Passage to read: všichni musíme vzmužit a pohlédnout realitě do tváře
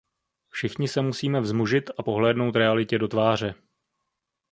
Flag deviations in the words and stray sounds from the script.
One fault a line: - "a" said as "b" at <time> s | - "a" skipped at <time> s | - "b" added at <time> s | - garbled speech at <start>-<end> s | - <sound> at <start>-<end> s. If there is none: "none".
- "se" added at 0.9 s